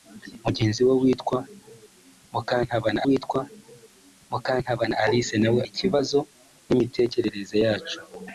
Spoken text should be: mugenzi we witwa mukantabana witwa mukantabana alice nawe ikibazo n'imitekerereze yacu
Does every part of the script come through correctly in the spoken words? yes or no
yes